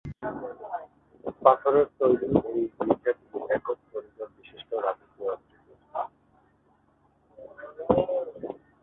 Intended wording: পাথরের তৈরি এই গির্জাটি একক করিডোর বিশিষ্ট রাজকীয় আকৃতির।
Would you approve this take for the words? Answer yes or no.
yes